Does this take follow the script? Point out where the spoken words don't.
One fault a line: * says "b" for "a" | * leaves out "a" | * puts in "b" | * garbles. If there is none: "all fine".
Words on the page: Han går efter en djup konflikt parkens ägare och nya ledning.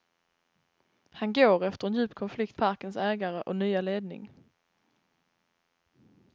all fine